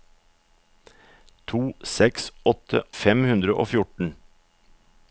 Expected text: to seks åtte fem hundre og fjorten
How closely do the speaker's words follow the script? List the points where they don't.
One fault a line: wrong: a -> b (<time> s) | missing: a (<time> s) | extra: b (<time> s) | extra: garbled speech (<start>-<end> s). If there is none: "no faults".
no faults